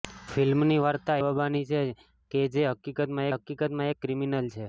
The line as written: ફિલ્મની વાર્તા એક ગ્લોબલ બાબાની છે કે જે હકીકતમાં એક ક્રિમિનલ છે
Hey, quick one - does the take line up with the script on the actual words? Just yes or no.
no